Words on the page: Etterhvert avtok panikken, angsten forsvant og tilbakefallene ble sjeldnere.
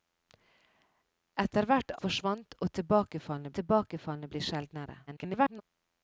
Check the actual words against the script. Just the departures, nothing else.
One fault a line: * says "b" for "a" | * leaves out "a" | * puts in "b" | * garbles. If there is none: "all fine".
* leaves out "avtok panikken angsten"
* puts in "tilbakefallene"
* garbles